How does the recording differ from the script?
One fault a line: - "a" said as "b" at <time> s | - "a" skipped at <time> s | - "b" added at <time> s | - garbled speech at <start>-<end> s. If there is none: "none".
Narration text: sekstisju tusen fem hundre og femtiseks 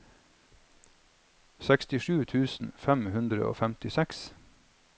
none